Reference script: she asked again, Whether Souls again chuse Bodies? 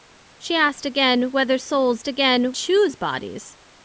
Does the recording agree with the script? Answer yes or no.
yes